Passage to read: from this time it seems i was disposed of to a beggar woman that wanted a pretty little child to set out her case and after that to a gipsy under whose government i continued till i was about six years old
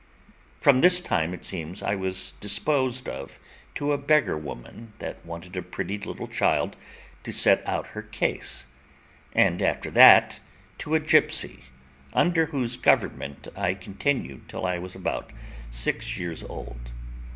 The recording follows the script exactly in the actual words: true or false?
true